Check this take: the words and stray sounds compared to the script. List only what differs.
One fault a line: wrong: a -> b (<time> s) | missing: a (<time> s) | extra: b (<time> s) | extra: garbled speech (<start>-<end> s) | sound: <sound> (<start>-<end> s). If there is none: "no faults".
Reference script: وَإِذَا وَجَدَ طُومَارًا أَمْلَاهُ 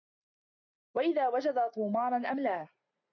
no faults